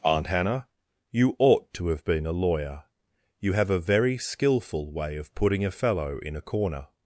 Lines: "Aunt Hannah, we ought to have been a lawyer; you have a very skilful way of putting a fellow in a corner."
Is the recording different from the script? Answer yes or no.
yes